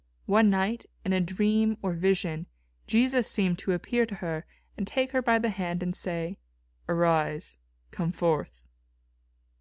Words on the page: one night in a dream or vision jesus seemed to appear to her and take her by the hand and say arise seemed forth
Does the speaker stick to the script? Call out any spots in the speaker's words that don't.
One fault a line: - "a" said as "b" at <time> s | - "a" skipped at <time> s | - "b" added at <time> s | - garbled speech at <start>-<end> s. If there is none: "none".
- "seemed" said as "come" at 7.9 s